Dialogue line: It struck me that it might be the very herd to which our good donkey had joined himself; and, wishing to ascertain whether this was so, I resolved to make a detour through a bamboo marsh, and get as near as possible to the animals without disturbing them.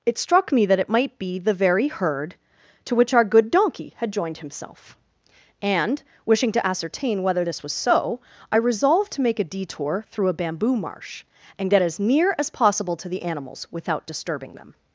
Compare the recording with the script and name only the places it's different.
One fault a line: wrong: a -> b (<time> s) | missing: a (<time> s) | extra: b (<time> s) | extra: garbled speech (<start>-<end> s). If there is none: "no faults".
no faults